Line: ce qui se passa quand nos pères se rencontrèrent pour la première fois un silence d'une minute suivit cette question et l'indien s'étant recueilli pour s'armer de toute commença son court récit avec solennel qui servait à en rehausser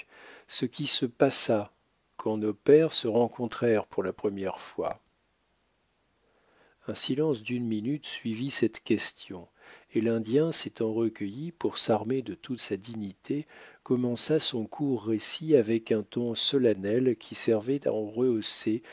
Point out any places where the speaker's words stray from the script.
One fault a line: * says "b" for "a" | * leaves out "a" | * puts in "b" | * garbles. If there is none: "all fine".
* puts in "sa dignité"
* puts in "un ton"